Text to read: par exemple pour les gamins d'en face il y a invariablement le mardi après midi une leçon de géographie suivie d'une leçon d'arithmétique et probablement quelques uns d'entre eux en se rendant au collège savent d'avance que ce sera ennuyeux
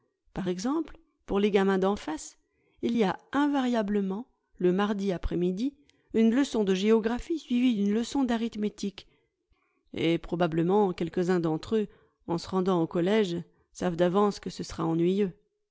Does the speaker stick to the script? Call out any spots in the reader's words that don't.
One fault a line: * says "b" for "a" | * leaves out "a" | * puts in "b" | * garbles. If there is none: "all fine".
all fine